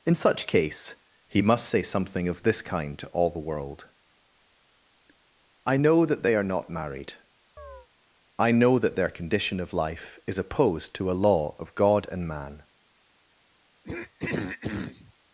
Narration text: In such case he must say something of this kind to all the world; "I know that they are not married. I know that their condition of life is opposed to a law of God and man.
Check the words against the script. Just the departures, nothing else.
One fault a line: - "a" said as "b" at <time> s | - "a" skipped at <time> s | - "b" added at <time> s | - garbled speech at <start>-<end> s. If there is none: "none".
none